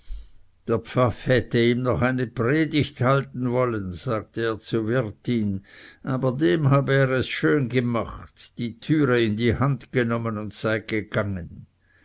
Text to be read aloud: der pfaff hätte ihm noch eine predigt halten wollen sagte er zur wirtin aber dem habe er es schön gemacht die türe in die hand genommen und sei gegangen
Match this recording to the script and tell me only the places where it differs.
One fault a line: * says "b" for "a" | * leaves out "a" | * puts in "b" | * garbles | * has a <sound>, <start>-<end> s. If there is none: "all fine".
all fine